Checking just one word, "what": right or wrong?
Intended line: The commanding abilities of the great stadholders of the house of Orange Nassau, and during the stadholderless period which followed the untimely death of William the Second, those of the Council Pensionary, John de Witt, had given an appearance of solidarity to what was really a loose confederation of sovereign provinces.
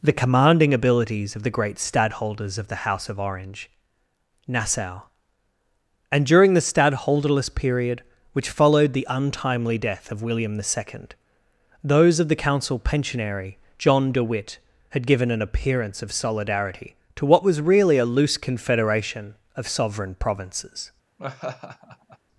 right